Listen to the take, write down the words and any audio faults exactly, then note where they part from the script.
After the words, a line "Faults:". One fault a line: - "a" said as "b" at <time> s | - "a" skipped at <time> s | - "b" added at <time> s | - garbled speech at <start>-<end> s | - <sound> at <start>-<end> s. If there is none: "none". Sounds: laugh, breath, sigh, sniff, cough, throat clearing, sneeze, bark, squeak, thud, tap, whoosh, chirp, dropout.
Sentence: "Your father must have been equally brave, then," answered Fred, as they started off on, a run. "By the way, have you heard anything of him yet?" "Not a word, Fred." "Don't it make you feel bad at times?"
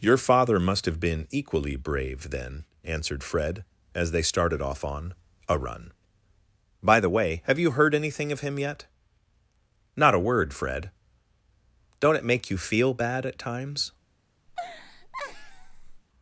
"Your father must have been equally brave, then," answered Fred, as they started off on, a run. "By the way, have you heard anything of him yet?" "Not a word, Fred." "Don't it make you feel bad at times?"
Faults:
- laugh at 14.5-16.0 s